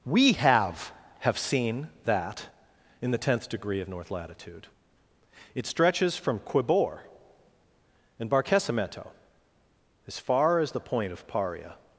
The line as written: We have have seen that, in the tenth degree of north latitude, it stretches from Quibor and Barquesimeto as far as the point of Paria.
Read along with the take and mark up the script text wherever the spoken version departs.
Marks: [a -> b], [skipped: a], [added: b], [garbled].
We have have seen that, in the tenth degree of north latitude, it stretches from Quibor and Barquesimeto as far as the point of Paria.